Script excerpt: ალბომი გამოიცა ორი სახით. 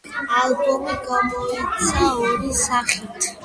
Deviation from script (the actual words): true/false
false